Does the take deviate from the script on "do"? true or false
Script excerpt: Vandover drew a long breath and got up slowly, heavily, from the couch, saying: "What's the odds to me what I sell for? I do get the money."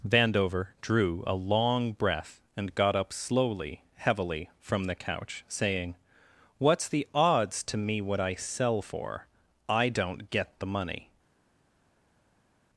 true